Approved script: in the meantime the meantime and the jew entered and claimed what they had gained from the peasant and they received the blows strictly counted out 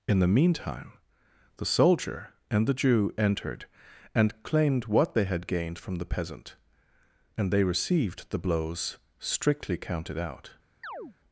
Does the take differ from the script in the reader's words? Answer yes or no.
yes